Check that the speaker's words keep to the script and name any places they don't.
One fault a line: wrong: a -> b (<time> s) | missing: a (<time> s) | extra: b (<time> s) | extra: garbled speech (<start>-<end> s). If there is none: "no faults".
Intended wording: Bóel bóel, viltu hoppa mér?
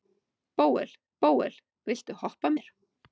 no faults